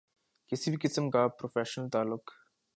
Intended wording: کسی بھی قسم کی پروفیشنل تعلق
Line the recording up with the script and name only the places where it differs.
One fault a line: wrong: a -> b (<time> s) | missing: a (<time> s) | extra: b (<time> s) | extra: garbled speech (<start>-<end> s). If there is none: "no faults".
wrong: کی -> کا (1.1 s)